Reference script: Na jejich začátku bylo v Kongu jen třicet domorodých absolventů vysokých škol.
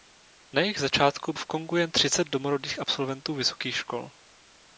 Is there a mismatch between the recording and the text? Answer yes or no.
yes